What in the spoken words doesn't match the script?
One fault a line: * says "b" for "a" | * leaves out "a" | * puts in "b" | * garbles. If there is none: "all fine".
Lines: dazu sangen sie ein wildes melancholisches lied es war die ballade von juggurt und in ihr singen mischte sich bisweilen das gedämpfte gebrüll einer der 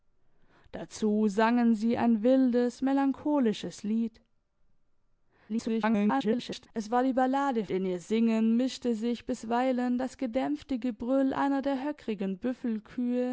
* garbles
* leaves out "von juggurt und"